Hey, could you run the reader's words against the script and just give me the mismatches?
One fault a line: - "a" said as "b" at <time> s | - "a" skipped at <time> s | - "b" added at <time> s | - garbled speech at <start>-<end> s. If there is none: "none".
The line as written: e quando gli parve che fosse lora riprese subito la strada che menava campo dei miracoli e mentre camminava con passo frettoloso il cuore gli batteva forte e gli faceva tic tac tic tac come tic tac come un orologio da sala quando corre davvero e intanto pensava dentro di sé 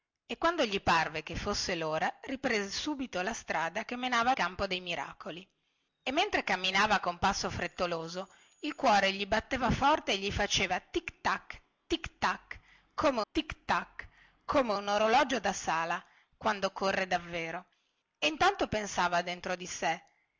none